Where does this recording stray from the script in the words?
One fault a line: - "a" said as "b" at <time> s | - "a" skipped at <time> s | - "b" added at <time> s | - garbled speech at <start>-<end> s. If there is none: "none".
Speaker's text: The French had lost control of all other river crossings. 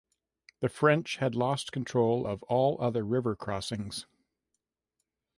none